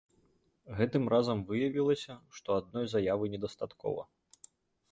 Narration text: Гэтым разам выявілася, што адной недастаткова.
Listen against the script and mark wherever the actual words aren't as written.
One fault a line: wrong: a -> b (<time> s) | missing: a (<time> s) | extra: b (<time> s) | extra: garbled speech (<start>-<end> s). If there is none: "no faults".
extra: заявы (3.0 s)